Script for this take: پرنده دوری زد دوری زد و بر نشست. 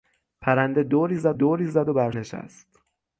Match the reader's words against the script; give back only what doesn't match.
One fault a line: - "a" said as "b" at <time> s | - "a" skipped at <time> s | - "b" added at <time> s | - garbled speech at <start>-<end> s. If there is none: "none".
none